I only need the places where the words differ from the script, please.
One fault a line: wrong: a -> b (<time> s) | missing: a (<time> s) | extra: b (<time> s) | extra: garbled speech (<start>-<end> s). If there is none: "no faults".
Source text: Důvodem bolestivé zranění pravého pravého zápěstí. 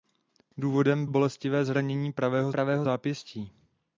no faults